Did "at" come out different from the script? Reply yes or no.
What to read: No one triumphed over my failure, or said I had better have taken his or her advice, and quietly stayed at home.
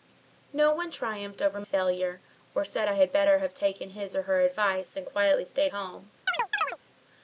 yes